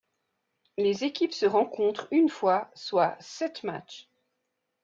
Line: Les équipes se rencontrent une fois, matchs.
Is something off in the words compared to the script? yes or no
yes